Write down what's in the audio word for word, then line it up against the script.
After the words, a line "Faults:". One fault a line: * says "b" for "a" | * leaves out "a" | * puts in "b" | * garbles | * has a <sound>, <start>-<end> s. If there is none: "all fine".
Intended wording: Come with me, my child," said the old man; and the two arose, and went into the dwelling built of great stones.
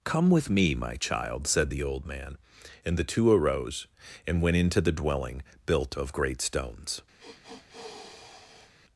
Come with me, my child," said the old man; and the two arose, and went into the dwelling built of great stones.
Faults:
* has a sniff, 7.2-8.7 s